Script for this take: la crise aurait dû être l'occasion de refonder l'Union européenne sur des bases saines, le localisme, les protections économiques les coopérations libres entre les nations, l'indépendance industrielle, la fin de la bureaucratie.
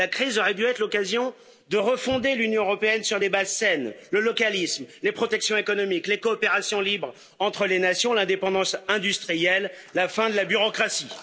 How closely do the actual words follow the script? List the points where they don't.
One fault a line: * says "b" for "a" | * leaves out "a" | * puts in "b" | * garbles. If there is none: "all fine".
all fine